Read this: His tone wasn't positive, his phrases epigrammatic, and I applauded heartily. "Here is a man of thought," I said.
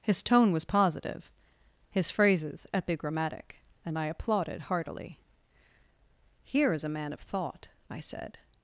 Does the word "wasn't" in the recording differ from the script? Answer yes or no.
yes